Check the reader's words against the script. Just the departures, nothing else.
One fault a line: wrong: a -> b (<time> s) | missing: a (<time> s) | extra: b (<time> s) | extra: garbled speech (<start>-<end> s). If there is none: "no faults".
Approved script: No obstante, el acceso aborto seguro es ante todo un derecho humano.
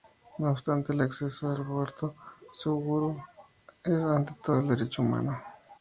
extra: al (1.5 s)